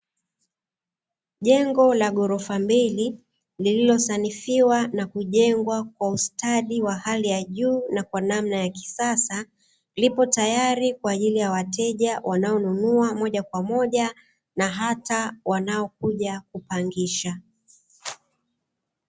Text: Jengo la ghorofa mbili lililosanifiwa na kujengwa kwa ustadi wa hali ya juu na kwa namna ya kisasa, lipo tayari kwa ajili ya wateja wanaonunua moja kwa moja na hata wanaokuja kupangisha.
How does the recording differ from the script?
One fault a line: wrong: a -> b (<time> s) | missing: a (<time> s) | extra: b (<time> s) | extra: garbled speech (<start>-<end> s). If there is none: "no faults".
no faults